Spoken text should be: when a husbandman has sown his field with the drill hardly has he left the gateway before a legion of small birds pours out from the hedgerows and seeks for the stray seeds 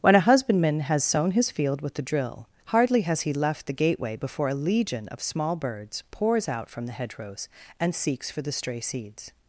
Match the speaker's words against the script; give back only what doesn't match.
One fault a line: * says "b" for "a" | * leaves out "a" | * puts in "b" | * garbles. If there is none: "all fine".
all fine